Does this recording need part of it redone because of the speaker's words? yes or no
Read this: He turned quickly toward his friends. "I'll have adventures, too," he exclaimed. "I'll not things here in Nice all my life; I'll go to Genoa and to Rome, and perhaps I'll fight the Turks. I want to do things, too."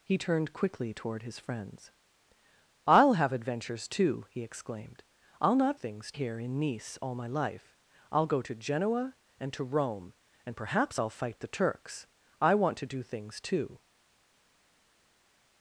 no